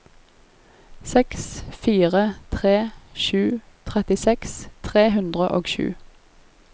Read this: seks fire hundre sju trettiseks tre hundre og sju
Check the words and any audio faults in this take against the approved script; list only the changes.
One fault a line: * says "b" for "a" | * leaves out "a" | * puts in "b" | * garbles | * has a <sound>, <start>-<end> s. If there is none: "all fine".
* says "tre" for "hundre"